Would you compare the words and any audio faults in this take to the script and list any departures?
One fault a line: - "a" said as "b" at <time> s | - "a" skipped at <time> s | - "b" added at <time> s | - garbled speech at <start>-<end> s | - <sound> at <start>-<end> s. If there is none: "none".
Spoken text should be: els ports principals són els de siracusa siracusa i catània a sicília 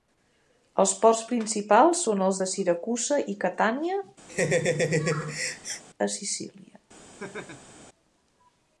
- "siracusa" skipped at 3.2 s
- laugh at 4.3-5.8 s
- laugh at 7.2-7.8 s